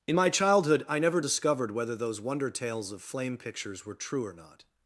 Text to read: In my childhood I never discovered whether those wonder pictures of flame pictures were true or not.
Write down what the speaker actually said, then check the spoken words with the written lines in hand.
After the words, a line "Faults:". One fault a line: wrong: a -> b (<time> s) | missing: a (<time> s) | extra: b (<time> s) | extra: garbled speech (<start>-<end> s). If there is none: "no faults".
In my childhood I never discovered whether those wonder tales of flame pictures were true or not.
Faults:
wrong: pictures -> tales (2.5 s)